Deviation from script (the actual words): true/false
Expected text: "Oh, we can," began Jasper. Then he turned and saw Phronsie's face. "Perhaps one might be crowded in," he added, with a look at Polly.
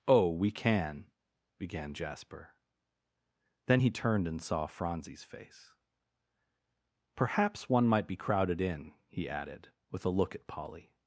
false